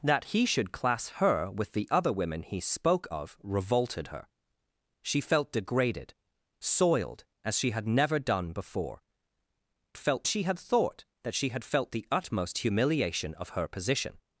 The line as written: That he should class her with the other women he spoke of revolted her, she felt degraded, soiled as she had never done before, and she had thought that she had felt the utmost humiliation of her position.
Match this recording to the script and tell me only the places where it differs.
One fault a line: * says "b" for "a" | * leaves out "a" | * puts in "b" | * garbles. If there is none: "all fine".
* says "felt" for "and"